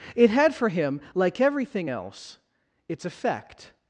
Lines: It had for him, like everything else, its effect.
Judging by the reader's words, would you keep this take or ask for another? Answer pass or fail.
pass